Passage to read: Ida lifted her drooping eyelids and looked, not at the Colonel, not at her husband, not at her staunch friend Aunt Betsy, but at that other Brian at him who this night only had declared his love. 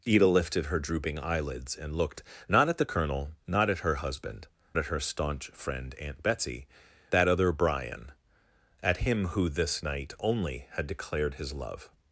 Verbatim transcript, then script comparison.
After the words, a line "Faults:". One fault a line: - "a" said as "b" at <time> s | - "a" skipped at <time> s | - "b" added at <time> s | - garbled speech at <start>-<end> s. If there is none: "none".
Ida lifted her drooping eyelids and looked, not at the Colonel, not at her husband, at her staunch friend Aunt Betsy, that other Brian at him who this night only had declared his love.
Faults:
- "not" skipped at 4.5 s
- "but at" skipped at 6.7 s